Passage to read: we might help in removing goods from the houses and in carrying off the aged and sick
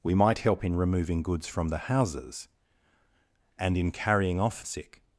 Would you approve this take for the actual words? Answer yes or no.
no